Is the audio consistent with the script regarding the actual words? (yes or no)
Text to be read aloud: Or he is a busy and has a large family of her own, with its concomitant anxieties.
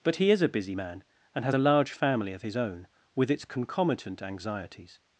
no